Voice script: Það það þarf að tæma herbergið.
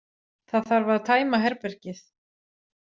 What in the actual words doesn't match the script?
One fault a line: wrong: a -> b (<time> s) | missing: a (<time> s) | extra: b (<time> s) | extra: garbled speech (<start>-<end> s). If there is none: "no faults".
missing: það (0.7 s)